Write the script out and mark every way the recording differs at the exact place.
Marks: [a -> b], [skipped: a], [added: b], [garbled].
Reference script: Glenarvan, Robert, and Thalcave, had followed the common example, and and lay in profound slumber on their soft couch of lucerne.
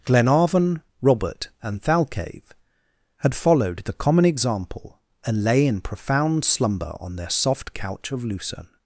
Glenarvan, Robert, and Thalcave, had followed the common example, and [skipped: and] lay in profound slumber on their soft couch of lucerne.